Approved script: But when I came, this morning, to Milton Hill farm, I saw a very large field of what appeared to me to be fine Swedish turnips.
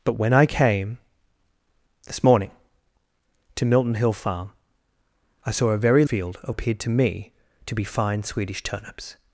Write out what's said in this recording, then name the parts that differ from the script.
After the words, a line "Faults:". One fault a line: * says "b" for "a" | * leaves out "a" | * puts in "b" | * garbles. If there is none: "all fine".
But when I came, this morning, to Milton Hill farm, I saw a very field of appeared to me to be fine Swedish turnips.
Faults:
* leaves out "large"
* leaves out "what"